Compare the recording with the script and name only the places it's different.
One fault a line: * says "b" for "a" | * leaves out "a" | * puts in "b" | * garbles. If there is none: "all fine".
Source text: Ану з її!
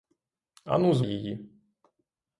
all fine